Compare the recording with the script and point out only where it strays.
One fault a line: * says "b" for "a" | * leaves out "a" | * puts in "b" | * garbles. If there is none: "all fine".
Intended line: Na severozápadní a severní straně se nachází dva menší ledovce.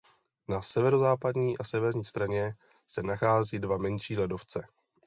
all fine